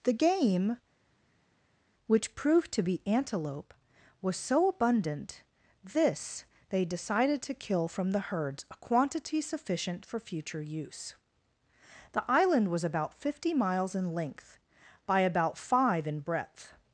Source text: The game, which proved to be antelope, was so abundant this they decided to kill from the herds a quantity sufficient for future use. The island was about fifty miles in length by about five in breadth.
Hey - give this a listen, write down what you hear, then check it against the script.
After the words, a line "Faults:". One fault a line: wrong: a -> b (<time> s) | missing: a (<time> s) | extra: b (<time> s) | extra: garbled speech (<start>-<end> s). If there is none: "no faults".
The game, which proved to be antelope, was so abundant this they decided to kill from the herds a quantity sufficient for future use. The island was about fifty miles in length by about five in breadth.
Faults:
no faults